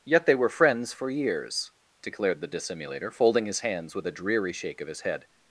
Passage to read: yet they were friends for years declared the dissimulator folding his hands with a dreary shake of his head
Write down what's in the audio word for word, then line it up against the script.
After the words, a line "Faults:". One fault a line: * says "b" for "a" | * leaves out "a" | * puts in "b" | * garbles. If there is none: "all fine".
yet they were friends for years declared the dissimulator folding his hands with a dreary shake of his head
Faults:
all fine